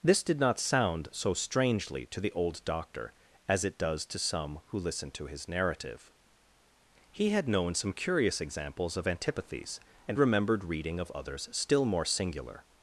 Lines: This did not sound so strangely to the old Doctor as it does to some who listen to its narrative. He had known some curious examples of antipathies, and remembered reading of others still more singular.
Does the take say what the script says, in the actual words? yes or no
no